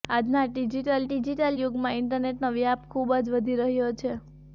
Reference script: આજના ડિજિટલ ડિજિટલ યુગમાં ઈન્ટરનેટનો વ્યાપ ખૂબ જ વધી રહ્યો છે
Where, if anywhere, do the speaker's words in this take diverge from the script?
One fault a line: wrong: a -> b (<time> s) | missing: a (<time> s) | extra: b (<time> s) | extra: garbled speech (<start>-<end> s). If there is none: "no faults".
no faults